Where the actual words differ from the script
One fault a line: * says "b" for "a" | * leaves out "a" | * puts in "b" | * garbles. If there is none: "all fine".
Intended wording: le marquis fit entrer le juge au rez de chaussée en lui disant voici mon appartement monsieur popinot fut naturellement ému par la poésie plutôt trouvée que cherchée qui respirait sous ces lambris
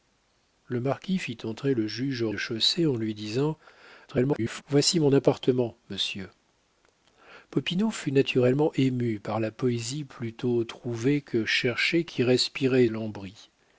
* leaves out "rez"
* garbles
* leaves out "sous ces"